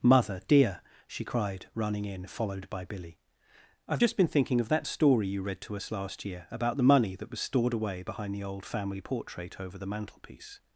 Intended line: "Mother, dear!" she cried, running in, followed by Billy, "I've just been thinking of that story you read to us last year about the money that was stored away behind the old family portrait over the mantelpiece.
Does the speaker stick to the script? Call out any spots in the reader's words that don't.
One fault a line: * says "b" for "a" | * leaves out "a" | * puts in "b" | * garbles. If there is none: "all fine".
all fine